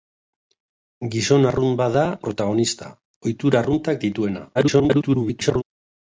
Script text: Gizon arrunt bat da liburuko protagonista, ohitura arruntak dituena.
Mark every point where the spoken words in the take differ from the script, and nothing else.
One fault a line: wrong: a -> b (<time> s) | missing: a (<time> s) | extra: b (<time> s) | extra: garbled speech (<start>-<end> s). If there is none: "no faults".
missing: liburuko (2.0 s)
extra: garbled speech (4.5-5.6 s)